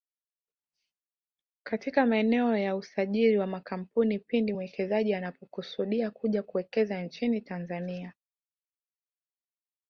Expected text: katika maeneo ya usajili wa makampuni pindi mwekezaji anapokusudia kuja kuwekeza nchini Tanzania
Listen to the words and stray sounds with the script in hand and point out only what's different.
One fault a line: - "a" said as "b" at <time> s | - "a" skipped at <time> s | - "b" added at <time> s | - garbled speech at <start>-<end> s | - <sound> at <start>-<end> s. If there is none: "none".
none